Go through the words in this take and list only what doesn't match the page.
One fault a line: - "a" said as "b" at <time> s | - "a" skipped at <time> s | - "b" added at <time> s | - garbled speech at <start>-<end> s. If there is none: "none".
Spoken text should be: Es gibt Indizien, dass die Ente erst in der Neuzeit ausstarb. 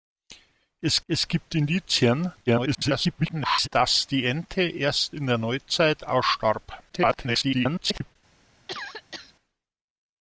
- "es" added at 1.1 s
- garbled speech at 2.5-3.7 s
- garbled speech at 6.9-8.2 s